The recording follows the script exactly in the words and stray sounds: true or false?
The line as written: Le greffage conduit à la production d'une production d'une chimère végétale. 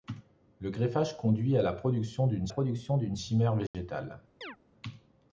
false